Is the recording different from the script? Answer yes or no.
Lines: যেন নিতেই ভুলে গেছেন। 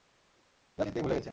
no